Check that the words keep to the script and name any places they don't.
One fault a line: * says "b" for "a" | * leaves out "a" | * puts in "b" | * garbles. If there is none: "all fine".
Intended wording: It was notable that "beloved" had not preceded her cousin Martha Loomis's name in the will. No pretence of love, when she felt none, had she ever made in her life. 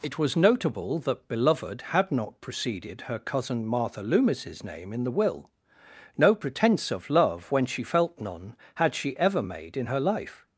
all fine